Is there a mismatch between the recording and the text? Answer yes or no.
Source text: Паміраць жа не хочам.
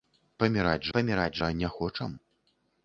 yes